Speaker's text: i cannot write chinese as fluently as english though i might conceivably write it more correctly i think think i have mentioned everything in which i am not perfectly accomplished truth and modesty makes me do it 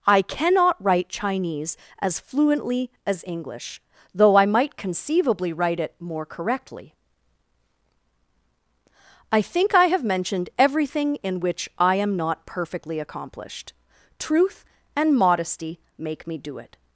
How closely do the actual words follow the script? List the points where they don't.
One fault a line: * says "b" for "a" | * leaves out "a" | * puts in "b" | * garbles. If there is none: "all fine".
* leaves out "think"
* says "make" for "makes"